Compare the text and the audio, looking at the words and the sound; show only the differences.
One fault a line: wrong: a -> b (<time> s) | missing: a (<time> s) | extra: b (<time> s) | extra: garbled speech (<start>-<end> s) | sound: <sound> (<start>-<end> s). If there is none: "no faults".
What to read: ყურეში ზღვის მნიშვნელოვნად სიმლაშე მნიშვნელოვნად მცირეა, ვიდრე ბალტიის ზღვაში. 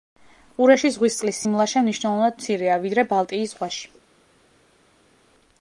wrong: მნიშვნელოვნად -> წყლის (1.2 s)